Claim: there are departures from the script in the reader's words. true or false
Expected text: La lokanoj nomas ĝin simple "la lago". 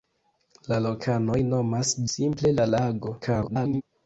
true